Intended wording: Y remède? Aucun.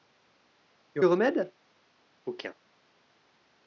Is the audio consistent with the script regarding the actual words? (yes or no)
yes